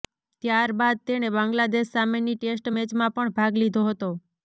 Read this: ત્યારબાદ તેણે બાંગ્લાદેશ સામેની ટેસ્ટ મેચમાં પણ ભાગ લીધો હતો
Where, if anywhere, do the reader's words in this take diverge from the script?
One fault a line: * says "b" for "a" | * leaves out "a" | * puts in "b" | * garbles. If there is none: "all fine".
all fine